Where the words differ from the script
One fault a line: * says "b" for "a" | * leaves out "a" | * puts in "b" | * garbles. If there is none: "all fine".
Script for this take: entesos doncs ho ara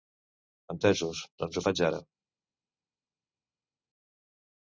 * puts in "faig"